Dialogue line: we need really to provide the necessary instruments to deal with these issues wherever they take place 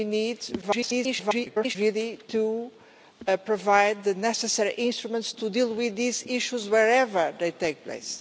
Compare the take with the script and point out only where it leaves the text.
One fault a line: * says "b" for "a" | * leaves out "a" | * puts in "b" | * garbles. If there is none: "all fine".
* garbles